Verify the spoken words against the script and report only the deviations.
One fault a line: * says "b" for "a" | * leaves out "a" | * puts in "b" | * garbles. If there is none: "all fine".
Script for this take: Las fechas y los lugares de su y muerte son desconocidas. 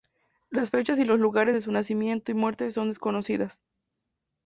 * puts in "nacimiento"